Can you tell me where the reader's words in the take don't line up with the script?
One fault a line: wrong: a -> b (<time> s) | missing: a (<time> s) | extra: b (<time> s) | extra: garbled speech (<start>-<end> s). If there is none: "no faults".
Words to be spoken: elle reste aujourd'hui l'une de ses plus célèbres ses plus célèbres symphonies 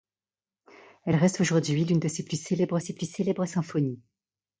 no faults